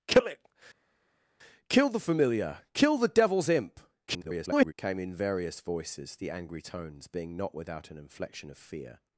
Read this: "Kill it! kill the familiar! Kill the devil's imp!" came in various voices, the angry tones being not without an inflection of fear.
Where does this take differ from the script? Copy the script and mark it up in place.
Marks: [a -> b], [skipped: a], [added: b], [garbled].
"Kill it! kill the familiar! Kill the devil's imp!" [garbled] came in various voices, the angry tones being not without an inflection of fear.